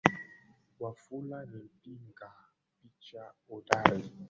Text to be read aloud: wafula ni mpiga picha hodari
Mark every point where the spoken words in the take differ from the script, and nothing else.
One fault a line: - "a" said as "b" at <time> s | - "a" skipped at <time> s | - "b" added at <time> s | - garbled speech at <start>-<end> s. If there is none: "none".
none